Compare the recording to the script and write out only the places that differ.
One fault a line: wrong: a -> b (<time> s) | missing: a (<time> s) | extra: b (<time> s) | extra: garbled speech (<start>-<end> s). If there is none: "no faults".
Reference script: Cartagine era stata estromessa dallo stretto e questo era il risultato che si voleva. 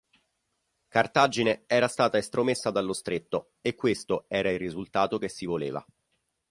no faults